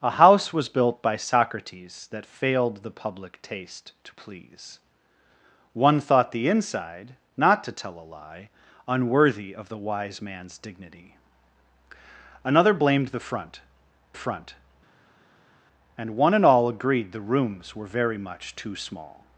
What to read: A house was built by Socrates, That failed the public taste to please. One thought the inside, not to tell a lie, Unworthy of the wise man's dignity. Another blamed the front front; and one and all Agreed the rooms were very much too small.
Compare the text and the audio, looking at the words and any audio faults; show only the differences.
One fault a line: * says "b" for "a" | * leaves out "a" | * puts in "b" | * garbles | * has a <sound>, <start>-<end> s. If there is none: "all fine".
all fine